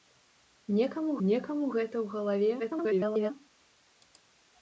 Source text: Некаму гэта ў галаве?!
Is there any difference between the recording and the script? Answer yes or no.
yes